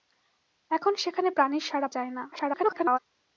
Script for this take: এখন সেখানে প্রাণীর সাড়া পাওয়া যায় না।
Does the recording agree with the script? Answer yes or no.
no